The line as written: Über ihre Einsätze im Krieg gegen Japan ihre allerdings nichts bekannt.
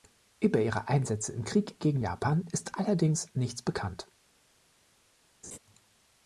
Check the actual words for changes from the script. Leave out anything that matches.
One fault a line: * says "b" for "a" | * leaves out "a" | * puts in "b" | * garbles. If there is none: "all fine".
* says "ist" for "ihre"